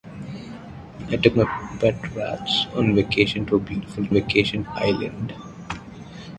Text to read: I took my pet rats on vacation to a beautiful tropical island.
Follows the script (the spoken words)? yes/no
no